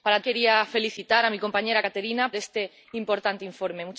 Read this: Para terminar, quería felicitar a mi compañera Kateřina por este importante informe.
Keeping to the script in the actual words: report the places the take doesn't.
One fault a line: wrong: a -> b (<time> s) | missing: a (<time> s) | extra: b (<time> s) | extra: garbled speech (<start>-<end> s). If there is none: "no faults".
missing: terminar (0.2 s)
missing: por (2.3 s)